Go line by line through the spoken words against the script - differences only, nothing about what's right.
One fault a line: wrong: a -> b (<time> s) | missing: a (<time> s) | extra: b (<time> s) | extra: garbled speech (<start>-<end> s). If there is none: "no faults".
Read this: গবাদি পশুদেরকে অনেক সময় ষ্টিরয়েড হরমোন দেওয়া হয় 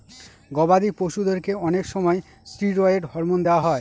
no faults